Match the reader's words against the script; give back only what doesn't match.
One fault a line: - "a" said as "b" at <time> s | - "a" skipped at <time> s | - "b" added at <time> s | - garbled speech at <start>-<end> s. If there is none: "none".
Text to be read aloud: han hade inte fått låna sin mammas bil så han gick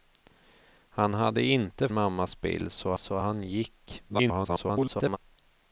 - "fått låna sin" skipped at 1.9 s
- "så" added at 3.0 s
- garbled speech at 4.1-5.2 s